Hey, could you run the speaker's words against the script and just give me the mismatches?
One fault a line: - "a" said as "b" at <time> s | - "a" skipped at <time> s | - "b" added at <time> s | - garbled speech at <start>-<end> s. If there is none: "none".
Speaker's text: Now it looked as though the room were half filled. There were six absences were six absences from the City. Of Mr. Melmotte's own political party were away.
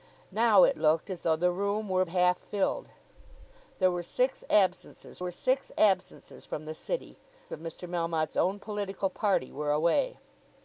none